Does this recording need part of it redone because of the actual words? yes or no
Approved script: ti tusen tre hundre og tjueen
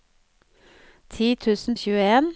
yes